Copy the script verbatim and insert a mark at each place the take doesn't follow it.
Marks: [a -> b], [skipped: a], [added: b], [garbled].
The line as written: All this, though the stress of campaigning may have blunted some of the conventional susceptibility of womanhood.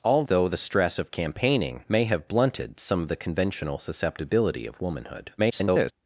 All [skipped: this,] though the stress of campaigning may have blunted some of the conventional susceptibility of womanhood. [garbled]